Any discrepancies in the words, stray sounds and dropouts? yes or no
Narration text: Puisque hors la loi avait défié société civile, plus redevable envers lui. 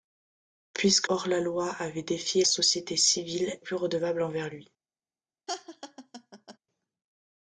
yes